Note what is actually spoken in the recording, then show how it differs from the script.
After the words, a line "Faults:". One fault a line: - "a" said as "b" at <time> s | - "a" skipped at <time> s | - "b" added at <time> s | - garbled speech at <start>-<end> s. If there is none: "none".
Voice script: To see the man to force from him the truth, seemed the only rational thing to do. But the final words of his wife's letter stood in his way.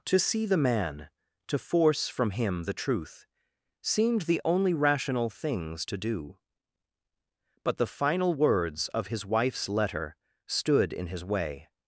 To see the man to force from him the truth, seemed the only rational things to do. But the final words of his wife's letter stood in his way.
Faults:
- "thing" said as "things" at 5.3 s